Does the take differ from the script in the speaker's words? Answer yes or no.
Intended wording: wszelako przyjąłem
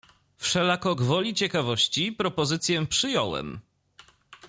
yes